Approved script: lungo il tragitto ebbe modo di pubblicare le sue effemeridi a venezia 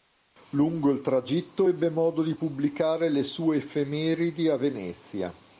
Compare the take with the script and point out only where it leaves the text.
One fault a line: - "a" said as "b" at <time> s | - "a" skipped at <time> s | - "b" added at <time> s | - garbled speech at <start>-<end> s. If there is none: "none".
none